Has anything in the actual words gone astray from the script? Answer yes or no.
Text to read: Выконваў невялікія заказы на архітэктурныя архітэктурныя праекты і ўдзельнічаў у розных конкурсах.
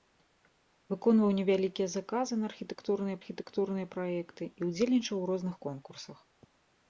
no